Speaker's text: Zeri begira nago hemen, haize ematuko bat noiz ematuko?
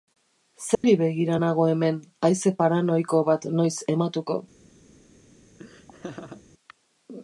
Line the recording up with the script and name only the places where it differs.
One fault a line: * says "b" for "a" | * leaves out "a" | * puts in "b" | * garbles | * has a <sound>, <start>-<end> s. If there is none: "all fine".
* has a dropout, 0.7-0.8 s
* says "paranoiko" for "ematuko"
* has a laugh, 5.6-6.4 s